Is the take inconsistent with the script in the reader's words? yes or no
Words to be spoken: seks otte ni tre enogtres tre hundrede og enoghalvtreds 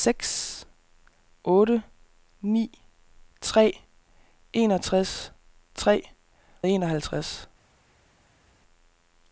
yes